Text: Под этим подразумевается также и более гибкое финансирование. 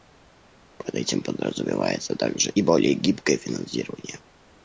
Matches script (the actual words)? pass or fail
pass